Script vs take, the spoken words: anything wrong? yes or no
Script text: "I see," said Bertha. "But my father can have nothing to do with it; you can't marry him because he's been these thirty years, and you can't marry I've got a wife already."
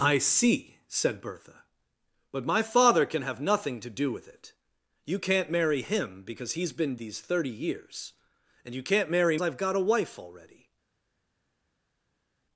no